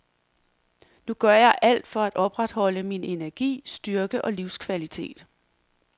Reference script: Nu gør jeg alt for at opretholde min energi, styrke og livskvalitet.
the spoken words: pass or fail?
pass